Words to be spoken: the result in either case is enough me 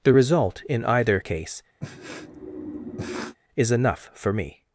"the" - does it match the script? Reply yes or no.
yes